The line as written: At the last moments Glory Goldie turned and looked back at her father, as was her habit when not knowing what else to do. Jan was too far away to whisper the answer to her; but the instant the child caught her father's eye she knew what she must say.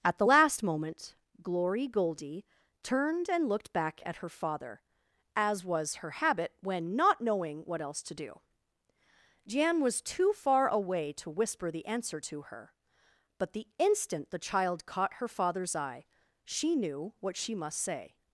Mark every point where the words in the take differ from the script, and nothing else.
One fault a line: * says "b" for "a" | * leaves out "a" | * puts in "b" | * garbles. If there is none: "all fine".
* says "moment" for "moments"